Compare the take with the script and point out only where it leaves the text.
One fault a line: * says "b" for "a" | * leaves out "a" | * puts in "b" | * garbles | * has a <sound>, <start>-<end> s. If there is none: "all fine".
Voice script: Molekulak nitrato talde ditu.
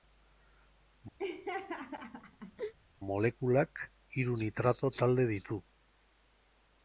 * has a laugh, 1.2-2.7 s
* puts in "hiru"